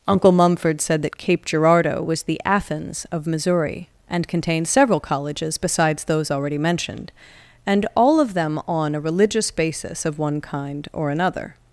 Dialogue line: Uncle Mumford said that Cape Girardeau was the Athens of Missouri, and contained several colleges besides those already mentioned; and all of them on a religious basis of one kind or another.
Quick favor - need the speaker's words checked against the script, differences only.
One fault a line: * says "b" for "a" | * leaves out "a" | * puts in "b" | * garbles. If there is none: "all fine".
all fine